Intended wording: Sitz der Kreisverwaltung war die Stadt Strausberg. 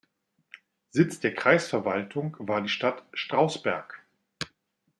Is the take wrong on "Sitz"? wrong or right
right